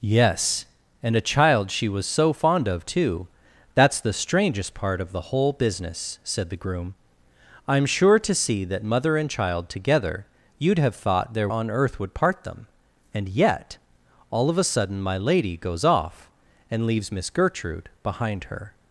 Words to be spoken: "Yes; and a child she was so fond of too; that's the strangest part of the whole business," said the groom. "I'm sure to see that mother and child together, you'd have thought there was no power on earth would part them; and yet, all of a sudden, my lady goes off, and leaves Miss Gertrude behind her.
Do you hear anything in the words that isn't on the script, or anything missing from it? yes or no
yes